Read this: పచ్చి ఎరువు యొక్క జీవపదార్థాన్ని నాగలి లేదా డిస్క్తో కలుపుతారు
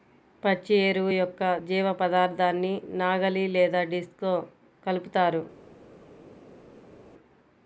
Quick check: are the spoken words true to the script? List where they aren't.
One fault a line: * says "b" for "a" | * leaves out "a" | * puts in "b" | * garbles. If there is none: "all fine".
all fine